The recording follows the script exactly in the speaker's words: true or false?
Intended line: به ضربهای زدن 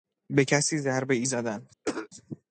false